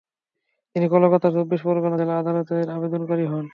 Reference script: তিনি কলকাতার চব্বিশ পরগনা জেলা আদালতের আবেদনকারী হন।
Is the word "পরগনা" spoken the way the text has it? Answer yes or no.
yes